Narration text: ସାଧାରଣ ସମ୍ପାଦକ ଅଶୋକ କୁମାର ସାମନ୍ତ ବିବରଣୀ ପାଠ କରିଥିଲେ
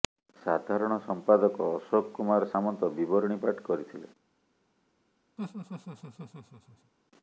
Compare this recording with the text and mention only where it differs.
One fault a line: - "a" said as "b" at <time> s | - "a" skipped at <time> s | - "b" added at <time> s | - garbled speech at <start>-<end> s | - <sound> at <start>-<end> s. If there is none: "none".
- laugh at 5.4-6.9 s